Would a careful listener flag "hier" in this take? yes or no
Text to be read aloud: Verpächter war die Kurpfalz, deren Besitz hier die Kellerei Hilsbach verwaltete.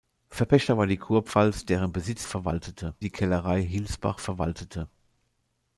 yes